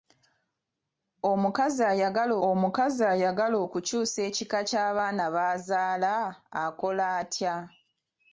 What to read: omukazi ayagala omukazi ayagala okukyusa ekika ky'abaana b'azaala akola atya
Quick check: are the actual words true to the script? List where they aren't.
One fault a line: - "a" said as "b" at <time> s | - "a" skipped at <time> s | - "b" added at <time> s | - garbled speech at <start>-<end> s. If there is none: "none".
none